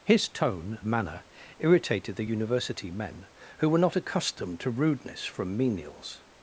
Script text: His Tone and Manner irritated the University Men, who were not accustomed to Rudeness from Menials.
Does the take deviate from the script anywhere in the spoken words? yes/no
yes